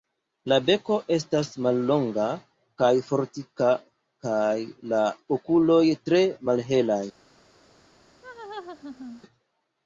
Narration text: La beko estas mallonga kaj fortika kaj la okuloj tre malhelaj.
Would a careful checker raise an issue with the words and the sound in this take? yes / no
yes